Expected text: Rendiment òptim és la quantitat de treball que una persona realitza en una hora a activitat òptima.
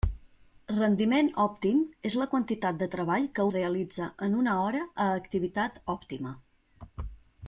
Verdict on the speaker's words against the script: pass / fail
fail